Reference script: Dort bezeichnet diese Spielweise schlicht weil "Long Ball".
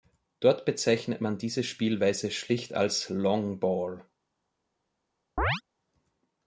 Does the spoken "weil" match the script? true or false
false